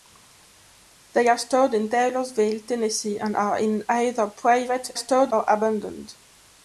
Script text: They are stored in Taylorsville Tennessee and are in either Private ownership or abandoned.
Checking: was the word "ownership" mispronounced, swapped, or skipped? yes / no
yes